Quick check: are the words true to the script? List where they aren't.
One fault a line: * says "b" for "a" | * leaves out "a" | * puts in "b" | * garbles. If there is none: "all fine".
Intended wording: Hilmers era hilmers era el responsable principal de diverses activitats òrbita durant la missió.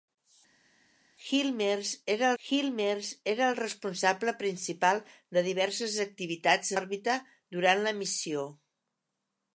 all fine